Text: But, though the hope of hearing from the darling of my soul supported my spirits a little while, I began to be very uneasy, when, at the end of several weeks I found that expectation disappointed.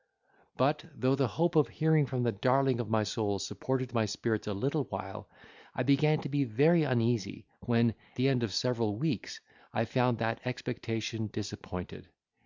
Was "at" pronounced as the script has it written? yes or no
no